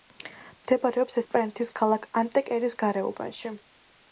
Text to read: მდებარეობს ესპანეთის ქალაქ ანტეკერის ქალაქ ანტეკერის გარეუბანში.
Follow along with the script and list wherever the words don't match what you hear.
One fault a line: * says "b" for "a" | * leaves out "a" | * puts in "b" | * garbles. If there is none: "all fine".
* leaves out "ქალაქ ანტეკერის"